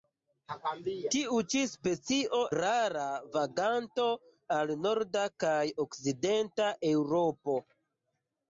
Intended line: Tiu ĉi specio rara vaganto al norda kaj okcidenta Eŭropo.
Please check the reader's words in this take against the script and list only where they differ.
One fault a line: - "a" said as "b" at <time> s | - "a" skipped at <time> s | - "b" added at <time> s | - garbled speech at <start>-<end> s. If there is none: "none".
none